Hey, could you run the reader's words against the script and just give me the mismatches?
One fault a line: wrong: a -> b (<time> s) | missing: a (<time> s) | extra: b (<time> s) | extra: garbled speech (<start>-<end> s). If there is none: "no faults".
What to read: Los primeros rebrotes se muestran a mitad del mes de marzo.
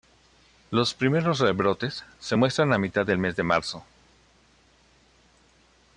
no faults